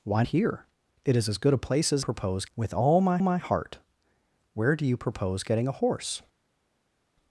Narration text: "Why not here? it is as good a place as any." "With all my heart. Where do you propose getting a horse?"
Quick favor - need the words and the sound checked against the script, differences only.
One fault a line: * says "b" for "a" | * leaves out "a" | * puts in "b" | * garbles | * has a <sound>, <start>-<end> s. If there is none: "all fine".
* leaves out "not"
* says "propose" for "any"
* puts in "my"